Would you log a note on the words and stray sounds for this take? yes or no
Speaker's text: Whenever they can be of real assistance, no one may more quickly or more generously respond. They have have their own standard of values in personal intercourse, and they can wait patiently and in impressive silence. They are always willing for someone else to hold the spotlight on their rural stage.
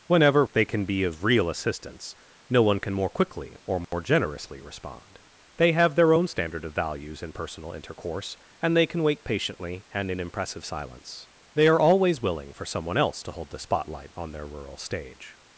yes